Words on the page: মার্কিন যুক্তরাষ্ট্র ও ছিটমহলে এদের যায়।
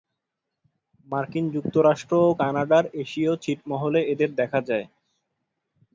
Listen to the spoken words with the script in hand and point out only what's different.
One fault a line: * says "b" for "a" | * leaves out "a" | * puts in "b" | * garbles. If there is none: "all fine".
* puts in "কানাডার এশীয়"
* puts in "দেখা"